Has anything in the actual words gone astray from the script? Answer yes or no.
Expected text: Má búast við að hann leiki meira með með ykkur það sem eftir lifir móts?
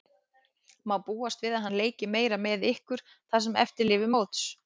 yes